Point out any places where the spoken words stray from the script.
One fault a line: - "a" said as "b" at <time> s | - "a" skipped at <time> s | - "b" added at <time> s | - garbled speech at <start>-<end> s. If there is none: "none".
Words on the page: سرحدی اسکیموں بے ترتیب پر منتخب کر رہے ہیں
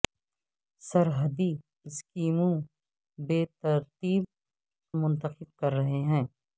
- "پر" skipped at 4.2 s